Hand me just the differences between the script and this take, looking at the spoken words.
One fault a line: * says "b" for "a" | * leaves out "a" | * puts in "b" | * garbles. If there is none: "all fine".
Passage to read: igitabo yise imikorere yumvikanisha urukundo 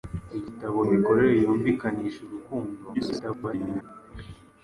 * leaves out "yise"
* garbles